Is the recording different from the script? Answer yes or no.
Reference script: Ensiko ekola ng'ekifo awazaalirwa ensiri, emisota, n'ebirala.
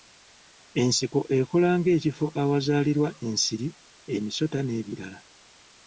no